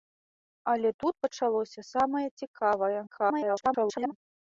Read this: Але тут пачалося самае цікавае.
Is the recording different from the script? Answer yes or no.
yes